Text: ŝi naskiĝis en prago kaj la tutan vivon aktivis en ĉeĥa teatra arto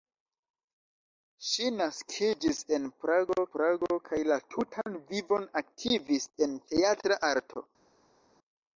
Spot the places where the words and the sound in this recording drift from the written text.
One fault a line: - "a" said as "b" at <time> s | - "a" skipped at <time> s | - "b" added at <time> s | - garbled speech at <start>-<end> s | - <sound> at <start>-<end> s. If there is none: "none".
- "prago" added at 3.5 s
- "ĉeĥa" skipped at 6.6 s